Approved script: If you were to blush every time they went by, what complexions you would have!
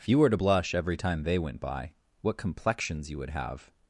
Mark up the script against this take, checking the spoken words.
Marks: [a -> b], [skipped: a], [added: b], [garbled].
If you were to blush every time they went by, what complexions you would have!